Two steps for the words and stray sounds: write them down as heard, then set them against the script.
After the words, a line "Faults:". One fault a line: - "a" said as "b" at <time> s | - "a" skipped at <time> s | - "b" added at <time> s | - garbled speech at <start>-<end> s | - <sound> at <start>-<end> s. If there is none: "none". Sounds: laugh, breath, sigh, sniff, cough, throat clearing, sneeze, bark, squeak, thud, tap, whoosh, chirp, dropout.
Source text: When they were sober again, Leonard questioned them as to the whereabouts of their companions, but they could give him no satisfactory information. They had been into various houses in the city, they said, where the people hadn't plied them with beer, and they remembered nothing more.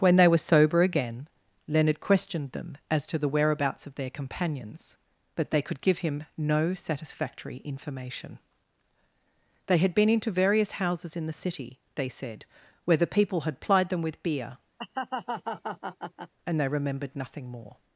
When they were sober again, Leonard questioned them as to the whereabouts of their companions, but they could give him no satisfactory information. They had been into various houses in the city, they said, where the people had plied them with beer, and they remembered nothing more.
Faults:
- "hadn't" said as "had" at 13.4 s
- laugh at 14.8-16.3 s